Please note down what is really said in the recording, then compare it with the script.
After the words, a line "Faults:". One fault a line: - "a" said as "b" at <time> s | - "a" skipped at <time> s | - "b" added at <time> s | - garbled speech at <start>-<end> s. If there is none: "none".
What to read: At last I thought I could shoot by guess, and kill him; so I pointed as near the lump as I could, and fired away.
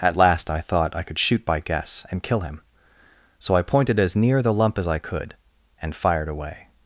At last I thought I could shoot by guess, and kill him; so I pointed as near the lump as I could, and fired away.
Faults:
none